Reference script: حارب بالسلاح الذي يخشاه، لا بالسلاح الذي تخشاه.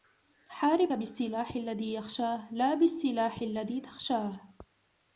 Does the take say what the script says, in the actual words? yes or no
yes